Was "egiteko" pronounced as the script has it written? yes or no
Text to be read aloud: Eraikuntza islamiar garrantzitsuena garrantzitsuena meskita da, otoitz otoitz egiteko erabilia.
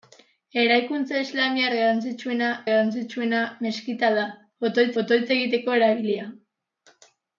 yes